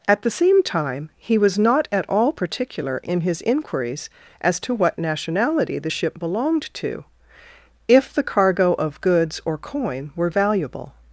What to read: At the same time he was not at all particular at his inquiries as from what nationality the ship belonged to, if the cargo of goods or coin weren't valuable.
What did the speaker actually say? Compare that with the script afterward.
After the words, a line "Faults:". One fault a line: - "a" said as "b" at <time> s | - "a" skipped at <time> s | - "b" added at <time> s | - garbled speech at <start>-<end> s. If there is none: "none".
At the same time he was not at all particular in his inquiries as to what nationality the ship belonged to, if the cargo of goods or coin were valuable.
Faults:
- "at" said as "in" at 3.0 s
- "from" said as "to" at 4.6 s
- "weren't" said as "were" at 10.2 s